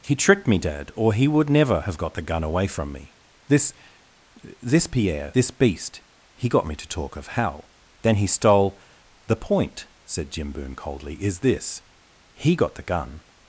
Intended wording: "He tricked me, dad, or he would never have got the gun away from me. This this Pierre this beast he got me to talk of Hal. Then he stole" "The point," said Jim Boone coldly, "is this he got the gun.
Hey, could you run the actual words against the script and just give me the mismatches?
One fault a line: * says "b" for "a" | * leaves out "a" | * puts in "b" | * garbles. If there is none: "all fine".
all fine